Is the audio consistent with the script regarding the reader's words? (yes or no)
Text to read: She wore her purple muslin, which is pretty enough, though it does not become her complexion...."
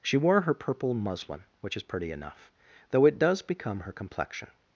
no